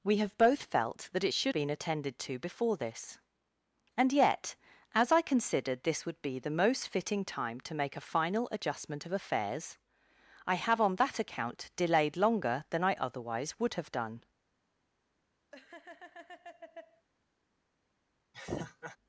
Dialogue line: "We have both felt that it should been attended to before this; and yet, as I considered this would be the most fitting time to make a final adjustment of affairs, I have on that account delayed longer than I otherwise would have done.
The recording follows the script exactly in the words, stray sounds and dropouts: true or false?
false